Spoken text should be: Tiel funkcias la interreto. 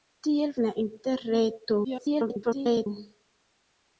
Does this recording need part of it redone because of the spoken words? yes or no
yes